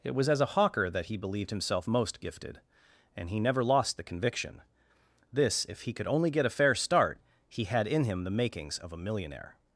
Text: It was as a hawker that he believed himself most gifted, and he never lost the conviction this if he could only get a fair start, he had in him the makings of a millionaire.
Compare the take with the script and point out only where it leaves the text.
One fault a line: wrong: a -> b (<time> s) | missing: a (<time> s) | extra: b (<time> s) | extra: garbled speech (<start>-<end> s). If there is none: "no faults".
no faults